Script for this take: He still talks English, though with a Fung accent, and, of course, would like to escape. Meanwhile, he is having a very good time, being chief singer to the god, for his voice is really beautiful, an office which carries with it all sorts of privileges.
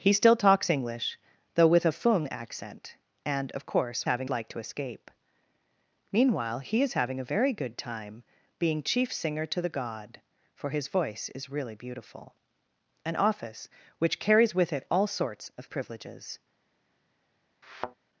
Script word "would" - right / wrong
wrong